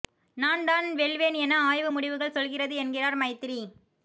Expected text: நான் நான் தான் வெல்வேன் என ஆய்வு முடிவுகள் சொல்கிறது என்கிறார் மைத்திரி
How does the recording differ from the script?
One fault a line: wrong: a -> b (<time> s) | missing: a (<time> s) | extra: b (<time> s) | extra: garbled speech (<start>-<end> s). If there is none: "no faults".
missing: நான் (0.6 s)